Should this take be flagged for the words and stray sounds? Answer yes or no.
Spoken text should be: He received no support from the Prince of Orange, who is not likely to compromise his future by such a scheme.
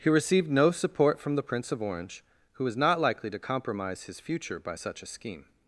yes